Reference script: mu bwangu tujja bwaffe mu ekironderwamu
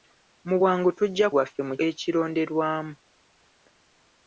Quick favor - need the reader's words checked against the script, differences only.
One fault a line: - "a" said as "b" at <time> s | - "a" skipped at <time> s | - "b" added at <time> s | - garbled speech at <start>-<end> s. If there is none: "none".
none